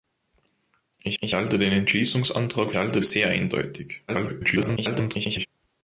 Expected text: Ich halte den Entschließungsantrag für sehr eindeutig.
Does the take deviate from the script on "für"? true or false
true